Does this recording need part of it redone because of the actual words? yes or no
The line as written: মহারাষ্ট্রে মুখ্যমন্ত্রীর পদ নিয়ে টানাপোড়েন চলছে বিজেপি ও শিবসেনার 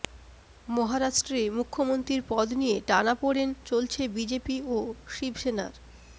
no